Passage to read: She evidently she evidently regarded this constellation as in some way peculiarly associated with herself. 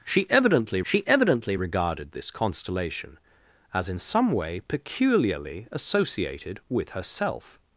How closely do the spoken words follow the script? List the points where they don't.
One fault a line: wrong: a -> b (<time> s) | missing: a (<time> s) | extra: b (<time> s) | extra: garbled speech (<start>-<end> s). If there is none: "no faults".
no faults